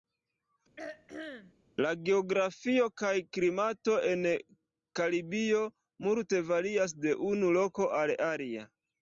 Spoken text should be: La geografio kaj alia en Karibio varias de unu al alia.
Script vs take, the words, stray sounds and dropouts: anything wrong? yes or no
yes